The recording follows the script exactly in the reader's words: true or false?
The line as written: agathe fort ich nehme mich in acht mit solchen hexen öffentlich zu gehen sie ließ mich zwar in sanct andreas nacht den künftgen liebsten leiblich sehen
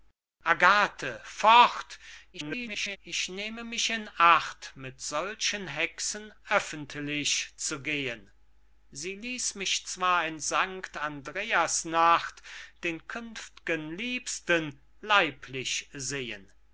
false